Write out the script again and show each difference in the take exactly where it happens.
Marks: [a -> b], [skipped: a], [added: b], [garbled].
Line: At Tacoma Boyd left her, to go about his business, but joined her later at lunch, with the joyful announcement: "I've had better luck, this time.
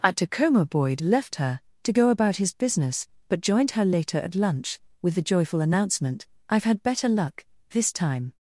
At Tacoma Boyd left her, to go about his business, but joined her later at lunch, with the joyful announcement: "I've had better luck, this time.